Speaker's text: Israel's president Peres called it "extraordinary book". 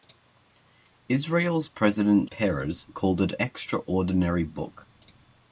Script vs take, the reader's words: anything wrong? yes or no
no